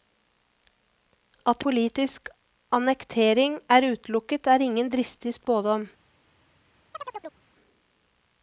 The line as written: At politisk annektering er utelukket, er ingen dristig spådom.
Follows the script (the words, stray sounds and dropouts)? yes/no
no